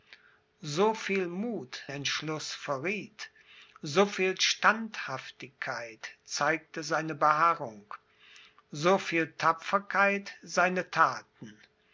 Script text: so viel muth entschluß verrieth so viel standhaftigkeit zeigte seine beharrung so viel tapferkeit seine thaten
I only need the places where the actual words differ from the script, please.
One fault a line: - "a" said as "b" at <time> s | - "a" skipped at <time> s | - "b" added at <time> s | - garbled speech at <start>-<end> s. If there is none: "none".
none